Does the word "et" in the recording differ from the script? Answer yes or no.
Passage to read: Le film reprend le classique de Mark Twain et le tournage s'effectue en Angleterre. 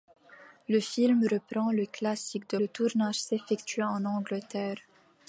yes